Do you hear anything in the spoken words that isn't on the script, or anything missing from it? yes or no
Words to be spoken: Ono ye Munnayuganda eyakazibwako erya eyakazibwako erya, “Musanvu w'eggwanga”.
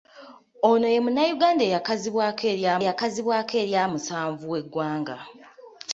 no